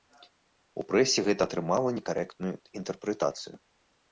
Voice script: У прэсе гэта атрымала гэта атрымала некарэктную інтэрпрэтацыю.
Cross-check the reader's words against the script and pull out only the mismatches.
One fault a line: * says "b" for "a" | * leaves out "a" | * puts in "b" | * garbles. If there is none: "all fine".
* leaves out "гэта атрымала"